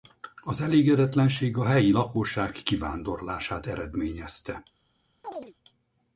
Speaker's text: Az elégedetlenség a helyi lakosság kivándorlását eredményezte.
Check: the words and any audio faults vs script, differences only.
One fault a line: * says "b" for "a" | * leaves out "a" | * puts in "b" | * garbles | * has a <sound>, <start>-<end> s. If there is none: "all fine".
* has a chirp, 5.2-5.5 s